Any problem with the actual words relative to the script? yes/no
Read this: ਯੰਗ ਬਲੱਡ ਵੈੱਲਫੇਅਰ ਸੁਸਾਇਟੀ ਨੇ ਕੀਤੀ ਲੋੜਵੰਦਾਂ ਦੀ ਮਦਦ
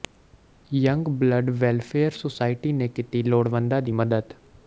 no